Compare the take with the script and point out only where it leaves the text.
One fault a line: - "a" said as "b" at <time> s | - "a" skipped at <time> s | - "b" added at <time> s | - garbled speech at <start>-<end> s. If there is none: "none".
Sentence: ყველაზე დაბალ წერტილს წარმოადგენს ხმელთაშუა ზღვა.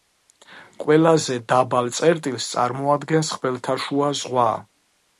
none